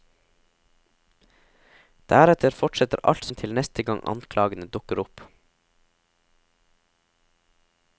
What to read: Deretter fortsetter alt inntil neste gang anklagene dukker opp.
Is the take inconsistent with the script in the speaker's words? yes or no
no